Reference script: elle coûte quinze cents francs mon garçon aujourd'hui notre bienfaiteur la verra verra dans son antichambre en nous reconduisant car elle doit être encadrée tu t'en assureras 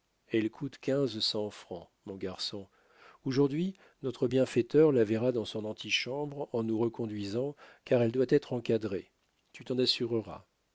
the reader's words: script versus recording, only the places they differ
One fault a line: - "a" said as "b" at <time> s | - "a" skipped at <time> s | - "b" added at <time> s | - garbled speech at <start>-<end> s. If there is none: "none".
- "verra" skipped at 5.3 s